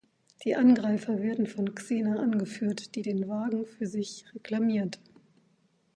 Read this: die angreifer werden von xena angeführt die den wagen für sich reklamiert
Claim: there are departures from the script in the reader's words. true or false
false